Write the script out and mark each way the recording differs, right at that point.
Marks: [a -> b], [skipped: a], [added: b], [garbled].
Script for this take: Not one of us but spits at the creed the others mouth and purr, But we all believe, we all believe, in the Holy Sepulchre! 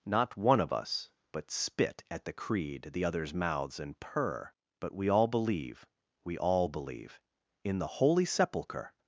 Not one of us but [spits -> spit] at the creed the others [mouth -> mouths] and purr, But we all believe, we all believe, in the Holy Sepulchre!